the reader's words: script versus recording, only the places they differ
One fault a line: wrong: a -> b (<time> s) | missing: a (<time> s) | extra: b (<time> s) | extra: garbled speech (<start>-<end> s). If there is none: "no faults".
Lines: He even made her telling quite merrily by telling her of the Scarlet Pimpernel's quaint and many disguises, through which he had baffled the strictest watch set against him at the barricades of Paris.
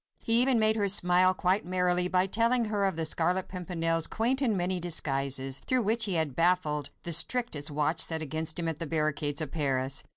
wrong: telling -> smile (0.9 s)